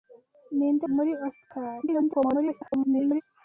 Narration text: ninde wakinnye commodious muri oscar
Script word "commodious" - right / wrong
wrong